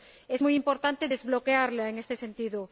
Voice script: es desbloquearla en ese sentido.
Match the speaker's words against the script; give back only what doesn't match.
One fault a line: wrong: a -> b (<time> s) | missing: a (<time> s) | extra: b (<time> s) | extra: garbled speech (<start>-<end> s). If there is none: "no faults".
extra: muy importante (0.4 s)
wrong: ese -> este (2.0 s)